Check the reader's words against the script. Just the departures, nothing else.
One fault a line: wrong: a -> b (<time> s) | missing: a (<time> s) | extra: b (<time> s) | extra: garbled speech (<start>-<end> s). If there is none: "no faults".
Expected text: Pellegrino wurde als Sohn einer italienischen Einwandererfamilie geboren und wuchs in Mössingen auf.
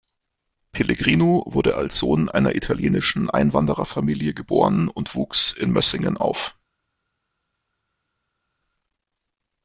no faults